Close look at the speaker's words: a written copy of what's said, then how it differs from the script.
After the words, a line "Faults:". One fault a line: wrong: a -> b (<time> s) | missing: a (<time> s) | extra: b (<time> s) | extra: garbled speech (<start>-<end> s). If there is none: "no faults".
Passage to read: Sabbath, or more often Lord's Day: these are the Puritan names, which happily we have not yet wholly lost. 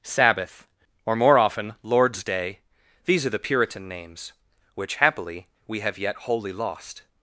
Sabbath, or more often Lord's Day: these are the Puritan names, which happily we have yet wholly lost.
Faults:
missing: not (6.0 s)